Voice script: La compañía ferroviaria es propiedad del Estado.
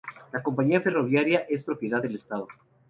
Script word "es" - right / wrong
right